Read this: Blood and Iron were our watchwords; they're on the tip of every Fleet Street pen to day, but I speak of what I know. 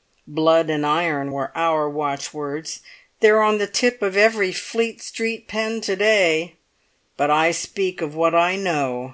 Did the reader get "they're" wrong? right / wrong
right